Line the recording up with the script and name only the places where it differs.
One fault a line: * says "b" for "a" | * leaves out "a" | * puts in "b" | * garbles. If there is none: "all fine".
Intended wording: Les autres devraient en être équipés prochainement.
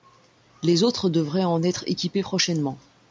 all fine